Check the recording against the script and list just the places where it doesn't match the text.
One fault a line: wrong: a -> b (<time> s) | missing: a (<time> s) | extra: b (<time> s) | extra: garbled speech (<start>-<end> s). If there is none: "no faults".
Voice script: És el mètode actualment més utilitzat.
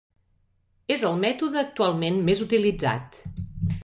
no faults